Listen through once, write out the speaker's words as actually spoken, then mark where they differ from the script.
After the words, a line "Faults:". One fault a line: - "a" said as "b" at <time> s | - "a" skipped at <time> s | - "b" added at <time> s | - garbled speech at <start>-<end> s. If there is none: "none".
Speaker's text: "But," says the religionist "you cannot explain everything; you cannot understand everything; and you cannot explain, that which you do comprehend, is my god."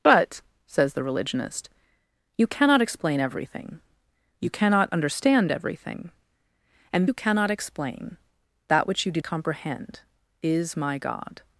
"But," says the religionist "you cannot explain everything; you cannot understand everything; and you cannot explain, that which you do comprehend, is my god."
Faults:
none